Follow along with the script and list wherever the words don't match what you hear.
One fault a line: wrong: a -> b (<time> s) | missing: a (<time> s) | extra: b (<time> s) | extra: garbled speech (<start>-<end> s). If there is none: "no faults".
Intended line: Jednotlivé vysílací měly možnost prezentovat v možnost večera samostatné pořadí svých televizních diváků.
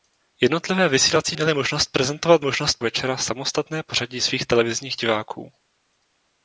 no faults